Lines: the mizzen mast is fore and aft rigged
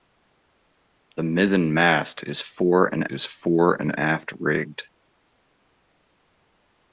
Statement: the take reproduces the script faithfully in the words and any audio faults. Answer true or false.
false